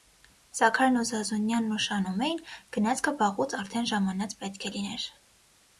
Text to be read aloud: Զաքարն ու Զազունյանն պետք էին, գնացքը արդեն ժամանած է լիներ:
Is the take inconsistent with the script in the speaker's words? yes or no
yes